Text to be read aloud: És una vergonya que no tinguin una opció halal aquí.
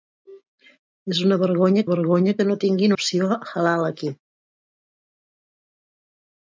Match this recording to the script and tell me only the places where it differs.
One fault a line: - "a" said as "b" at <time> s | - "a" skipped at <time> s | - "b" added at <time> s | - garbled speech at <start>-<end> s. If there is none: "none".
- "vergonya" added at 1.9 s
- "una" skipped at 3.0 s